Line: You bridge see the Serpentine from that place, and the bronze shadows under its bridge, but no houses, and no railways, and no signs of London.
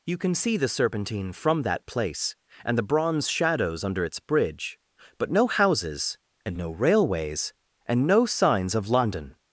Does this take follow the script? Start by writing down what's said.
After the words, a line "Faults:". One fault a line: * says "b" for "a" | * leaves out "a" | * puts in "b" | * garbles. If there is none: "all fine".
You can see the Serpentine from that place, and the bronze shadows under its bridge, but no houses, and no railways, and no signs of London.
Faults:
* says "can" for "bridge"